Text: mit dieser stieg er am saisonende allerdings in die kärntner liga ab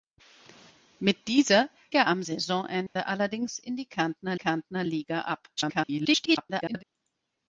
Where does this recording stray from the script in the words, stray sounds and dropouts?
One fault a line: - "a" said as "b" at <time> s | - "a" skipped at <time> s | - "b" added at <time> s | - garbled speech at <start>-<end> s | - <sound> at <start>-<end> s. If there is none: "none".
- "stieg" skipped at 1.7 s
- dropout at 2.9-3.0 s
- "kärntner" added at 4.3 s
- garbled speech at 5.6-6.8 s